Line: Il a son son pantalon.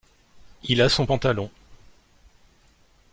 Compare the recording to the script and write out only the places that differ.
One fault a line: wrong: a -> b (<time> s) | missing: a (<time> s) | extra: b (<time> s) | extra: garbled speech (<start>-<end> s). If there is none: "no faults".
missing: son (1.1 s)